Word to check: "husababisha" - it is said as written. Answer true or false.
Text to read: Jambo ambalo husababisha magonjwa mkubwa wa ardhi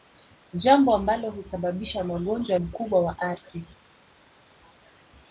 true